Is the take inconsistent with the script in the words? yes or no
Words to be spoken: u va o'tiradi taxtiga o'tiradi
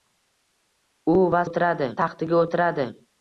no